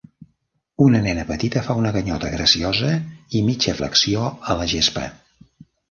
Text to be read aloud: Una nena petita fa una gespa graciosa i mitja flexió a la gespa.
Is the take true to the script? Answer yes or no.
no